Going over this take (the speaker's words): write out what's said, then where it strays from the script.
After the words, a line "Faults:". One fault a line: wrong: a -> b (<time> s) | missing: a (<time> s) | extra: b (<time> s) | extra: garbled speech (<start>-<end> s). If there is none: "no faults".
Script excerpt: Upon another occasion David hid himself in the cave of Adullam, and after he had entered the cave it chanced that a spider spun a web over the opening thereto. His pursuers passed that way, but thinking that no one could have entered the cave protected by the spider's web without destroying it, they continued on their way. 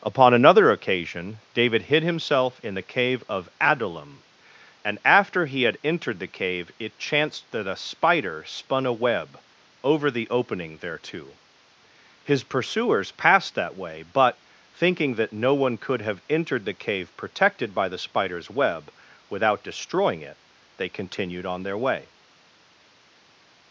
Upon another occasion David hid himself in the cave of Adullam, and after he had entered the cave it chanced that a spider spun a web over the opening thereto. His pursuers passed that way, but thinking that no one could have entered the cave protected by the spider's web without destroying it, they continued on their way.
Faults:
no faults